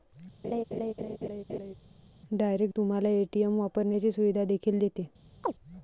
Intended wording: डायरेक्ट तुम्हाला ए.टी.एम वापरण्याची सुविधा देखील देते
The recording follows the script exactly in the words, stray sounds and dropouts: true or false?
false